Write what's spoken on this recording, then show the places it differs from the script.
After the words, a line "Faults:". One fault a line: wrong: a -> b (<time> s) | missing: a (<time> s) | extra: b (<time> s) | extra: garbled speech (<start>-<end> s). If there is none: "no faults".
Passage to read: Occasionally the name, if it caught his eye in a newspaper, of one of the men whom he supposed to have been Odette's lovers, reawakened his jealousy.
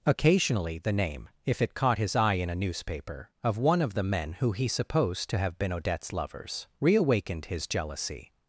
Occasionally the name, if it caught his eye in a newspaper, of one of the men who he supposed to have been Odette's lovers, reawakened his jealousy.
Faults:
wrong: whom -> who (4.4 s)